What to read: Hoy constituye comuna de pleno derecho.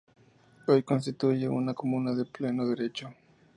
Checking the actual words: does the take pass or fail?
fail